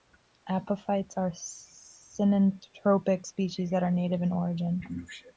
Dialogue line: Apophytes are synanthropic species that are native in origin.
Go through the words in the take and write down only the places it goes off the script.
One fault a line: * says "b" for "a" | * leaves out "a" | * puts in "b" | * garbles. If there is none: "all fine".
all fine